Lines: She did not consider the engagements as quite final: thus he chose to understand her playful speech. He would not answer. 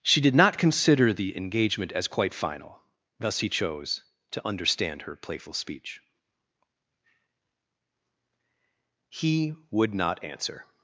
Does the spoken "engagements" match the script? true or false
false